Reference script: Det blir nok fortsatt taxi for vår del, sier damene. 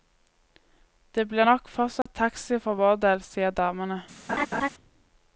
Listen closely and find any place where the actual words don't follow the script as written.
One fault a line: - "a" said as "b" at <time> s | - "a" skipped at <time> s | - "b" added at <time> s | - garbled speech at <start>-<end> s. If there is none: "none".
none